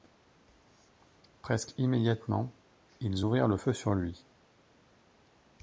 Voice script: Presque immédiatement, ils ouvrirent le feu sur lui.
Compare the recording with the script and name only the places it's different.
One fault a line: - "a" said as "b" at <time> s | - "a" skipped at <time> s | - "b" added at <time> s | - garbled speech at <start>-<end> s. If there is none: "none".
none